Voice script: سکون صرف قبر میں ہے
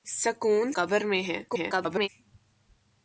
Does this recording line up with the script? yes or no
no